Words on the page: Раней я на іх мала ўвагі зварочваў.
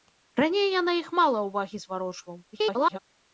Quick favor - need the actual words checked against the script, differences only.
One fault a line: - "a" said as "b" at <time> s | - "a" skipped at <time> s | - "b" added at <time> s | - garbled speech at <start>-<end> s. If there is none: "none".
- garbled speech at 2.5-3.0 s